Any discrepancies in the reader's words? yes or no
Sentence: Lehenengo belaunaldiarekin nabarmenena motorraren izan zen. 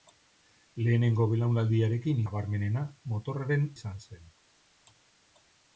no